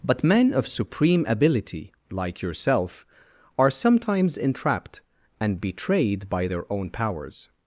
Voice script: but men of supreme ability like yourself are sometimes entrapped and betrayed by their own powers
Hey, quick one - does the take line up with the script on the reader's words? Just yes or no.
yes